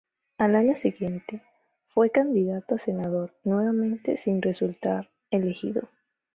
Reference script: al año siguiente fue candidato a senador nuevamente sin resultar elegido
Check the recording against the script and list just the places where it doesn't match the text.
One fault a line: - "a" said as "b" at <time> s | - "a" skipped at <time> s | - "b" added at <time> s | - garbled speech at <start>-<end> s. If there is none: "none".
none